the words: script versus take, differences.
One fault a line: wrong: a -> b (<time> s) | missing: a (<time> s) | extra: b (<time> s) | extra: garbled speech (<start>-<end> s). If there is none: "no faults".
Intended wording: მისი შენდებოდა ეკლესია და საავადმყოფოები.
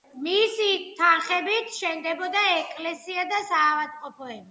extra: თანხებით (1.0 s)